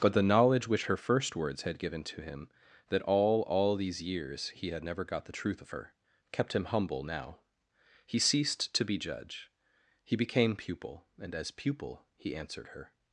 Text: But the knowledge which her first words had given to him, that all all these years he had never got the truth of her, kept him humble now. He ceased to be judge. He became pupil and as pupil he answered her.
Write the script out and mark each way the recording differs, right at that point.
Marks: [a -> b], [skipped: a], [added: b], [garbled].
But the knowledge which her first words had given to him, that all all these years he had never got the truth of her, kept him humble now. He ceased to be judge. He became pupil and as pupil he answered her.